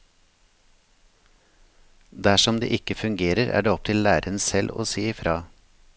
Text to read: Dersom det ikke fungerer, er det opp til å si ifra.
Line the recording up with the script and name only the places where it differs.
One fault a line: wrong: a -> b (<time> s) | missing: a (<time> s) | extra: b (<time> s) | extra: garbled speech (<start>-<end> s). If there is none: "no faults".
extra: læreren selv (4.1 s)